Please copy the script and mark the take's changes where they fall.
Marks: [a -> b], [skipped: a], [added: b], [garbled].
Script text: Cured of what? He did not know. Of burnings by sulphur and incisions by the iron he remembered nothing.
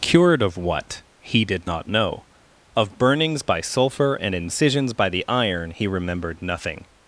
Cured of what? He did not know. Of burnings by sulphur and incisions by the iron he remembered nothing.